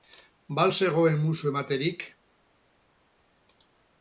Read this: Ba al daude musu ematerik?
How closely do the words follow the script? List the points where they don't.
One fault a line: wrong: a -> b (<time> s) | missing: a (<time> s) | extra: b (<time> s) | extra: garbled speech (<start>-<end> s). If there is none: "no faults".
wrong: daude -> zegoen (0.8 s)